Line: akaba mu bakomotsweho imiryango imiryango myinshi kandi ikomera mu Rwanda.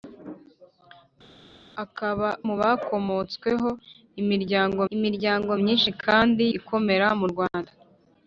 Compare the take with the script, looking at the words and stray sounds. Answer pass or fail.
pass